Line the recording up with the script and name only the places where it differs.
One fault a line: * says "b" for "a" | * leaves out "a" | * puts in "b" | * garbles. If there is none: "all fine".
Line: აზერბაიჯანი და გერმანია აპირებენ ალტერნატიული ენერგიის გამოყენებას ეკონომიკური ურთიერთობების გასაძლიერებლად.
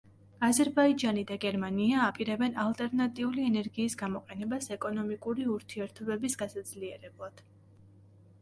all fine